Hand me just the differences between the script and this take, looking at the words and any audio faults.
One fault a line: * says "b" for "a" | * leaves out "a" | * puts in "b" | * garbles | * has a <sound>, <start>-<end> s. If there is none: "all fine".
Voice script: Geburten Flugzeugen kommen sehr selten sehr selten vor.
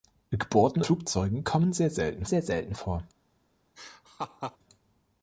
* has a laugh, 3.8-4.6 s